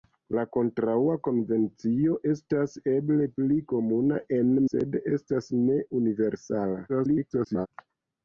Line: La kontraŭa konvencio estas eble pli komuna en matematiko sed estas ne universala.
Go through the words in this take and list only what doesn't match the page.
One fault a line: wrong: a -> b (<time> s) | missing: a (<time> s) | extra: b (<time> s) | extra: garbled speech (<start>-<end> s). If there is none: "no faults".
missing: matematiko (4.5 s)
extra: garbled speech (6.9-7.7 s)